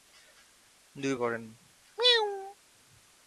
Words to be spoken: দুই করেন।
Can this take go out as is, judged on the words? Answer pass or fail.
pass